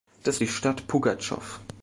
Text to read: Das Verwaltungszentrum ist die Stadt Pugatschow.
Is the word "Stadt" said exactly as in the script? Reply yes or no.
yes